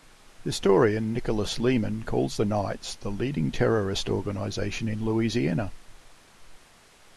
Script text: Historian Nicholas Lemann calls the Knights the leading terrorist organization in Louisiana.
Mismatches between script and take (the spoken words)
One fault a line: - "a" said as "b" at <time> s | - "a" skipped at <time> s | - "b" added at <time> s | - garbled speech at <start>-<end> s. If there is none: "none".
none